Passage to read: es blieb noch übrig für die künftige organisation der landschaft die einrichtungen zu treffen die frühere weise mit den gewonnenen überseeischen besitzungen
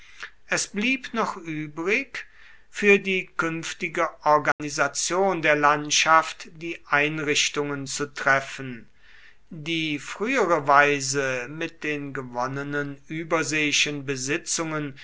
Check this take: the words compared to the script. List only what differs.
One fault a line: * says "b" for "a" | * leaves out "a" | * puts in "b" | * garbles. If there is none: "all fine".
all fine